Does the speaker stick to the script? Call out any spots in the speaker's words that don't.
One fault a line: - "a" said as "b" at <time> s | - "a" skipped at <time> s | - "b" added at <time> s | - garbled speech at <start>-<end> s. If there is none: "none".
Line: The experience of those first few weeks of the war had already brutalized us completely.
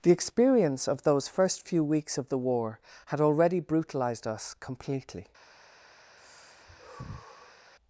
none